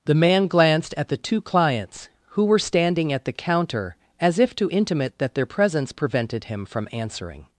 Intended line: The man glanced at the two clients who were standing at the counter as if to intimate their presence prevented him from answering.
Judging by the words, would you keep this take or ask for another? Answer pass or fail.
fail